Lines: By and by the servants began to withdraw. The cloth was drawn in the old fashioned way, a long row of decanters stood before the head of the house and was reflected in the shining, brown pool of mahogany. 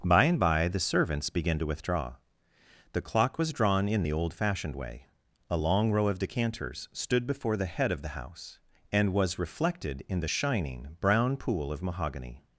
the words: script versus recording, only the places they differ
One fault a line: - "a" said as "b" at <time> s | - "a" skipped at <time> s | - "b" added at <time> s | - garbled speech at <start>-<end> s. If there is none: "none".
- "cloth" said as "clock" at 3.0 s